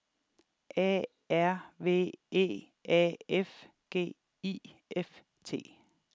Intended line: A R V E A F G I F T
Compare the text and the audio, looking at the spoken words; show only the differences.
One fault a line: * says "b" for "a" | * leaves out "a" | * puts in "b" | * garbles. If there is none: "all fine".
all fine